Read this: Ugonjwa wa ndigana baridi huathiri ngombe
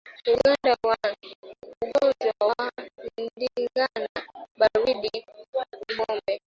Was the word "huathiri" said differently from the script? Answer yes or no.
yes